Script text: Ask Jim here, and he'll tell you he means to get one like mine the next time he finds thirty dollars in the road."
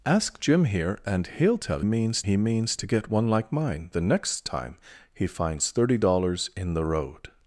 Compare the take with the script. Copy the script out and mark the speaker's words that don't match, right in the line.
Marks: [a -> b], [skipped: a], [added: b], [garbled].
Ask Jim here, and he'll tell [you -> means] he means to get one like mine the next time he finds thirty dollars in the road."